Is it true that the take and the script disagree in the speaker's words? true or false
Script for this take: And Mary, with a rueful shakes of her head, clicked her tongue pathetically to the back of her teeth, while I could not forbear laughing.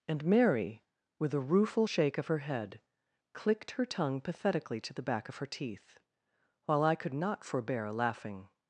true